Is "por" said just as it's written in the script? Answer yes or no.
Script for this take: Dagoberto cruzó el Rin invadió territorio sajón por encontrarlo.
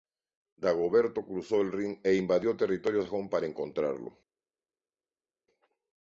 no